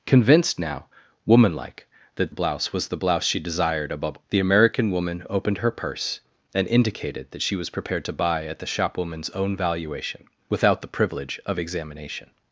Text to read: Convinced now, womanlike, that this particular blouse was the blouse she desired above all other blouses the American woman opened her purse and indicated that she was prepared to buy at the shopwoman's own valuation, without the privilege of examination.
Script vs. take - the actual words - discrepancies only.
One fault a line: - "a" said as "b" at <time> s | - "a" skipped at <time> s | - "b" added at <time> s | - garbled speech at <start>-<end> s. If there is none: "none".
- "this particular" skipped at 2.3 s
- "all other blouses" skipped at 4.2 s